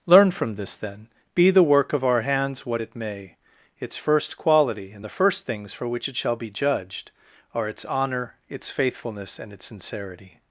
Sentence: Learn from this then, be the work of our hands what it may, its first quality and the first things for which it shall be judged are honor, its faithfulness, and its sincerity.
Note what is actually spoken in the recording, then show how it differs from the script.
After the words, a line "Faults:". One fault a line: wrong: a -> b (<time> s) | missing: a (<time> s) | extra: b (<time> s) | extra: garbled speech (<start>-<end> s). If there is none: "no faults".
Learn from this then, be the work of our hands what it may, its first quality and the first things for which it shall be judged are its honor, its faithfulness, and its sincerity.
Faults:
extra: its (7.7 s)